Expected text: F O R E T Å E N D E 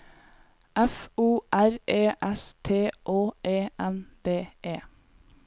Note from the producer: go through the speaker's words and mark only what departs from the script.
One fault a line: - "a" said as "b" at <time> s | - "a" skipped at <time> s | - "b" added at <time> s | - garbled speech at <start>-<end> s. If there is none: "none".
- "S" added at 2.2 s